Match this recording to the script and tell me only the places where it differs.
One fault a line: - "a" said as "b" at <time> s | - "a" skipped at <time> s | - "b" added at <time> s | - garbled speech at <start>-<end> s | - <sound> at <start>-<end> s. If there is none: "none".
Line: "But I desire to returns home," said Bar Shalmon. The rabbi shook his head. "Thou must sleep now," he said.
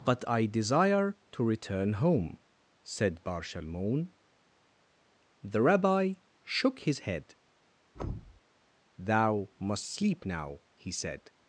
- "returns" said as "return" at 1.4 s
- thud at 7.9-8.4 s